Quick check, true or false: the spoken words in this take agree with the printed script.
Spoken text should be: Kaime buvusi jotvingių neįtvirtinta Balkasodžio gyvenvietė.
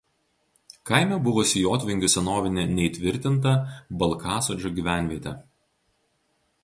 false